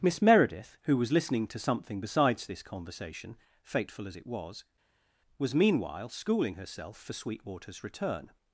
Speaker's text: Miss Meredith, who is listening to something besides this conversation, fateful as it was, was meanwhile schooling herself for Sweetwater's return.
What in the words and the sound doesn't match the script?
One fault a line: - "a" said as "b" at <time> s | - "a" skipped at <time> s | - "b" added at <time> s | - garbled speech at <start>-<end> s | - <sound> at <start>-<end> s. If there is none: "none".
- "is" said as "was" at 1.0 s